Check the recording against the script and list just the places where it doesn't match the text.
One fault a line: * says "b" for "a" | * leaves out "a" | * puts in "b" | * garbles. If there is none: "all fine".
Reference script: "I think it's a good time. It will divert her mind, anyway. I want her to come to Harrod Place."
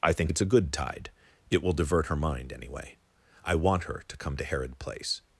* says "tide" for "time"